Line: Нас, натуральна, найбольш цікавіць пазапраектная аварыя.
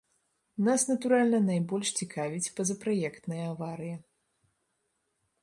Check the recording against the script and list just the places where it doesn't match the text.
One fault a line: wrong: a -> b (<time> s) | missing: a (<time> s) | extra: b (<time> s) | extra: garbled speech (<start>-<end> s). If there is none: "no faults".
no faults